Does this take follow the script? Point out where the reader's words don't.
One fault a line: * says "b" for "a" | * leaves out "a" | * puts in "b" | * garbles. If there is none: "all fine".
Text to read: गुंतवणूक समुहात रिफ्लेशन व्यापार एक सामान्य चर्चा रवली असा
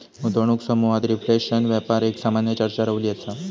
all fine